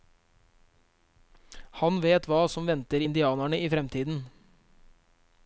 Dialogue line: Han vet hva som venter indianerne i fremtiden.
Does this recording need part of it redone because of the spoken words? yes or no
no